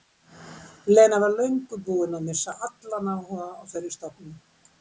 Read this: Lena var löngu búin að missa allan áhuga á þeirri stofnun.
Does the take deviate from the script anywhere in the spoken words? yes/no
no